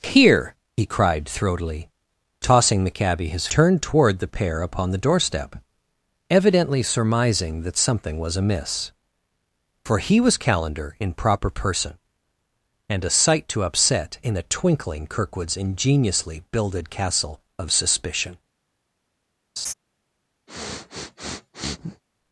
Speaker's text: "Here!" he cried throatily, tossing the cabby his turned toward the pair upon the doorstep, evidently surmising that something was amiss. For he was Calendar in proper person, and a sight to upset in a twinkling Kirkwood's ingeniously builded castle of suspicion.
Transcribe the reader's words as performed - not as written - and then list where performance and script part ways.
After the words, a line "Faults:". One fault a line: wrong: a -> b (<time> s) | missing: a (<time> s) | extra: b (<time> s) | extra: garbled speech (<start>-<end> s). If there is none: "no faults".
"Here!" he cried throatily, tossing the cabby his turned toward the pair upon the doorstep, evidently surmising that something was amiss. For he was Calendar in proper person, and a sight to upset in a twinkling Kirkwood's ingeniously builded castle of suspicion.
Faults:
no faults